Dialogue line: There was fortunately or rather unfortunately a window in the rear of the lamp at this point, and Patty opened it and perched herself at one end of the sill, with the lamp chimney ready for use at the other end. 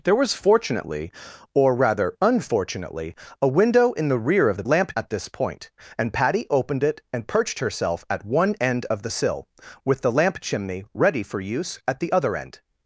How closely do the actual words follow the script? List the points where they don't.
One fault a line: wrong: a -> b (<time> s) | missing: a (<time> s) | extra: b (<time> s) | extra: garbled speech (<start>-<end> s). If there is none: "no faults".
no faults